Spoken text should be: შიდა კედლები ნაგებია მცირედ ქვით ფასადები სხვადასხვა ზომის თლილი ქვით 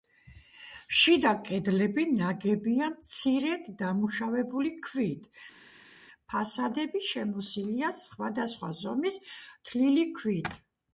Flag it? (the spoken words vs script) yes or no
yes